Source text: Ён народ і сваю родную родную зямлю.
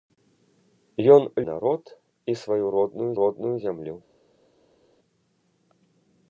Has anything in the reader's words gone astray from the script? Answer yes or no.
no